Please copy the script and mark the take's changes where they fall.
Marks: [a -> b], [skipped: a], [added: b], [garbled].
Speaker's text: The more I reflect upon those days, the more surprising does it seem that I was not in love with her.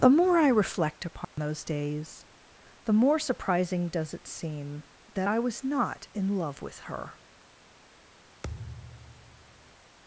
The more I reflect upon those days, the more surprising does it seem that I was not in love with her.